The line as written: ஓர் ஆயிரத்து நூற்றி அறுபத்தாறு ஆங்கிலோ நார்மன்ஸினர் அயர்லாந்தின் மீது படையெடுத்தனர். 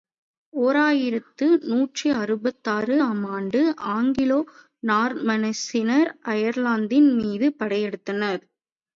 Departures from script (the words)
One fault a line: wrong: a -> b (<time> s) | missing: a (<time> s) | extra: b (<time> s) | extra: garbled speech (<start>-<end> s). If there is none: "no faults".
extra: ஆம் ஆண்டு (3.0 s)